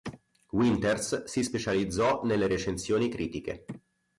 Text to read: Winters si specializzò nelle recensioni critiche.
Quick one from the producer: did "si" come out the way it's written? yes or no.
yes